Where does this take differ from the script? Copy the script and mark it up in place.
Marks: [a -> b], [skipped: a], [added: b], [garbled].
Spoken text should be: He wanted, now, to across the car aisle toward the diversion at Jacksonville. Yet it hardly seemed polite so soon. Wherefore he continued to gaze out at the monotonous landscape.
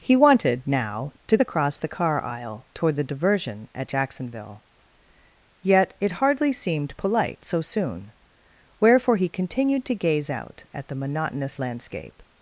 He wanted, now, to across the car aisle toward the diversion at Jacksonville. Yet it hardly seemed polite so soon. Wherefore he continued to gaze out at the monotonous landscape.